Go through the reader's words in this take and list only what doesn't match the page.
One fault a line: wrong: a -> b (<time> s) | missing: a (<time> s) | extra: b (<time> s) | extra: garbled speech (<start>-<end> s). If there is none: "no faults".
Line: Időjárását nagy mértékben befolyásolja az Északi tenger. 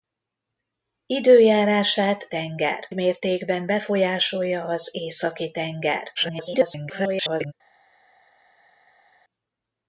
wrong: nagy -> tenger (2.3 s)
extra: garbled speech (6.2-7.5 s)